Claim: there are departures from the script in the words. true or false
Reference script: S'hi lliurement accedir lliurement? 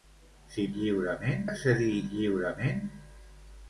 false